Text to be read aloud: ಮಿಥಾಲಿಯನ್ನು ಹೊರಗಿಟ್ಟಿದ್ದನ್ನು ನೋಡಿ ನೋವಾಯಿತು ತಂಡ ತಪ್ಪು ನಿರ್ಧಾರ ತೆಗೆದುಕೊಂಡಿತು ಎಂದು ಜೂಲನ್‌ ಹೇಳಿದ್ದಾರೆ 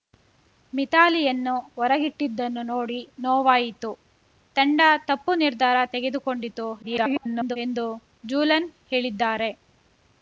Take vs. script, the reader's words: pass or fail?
fail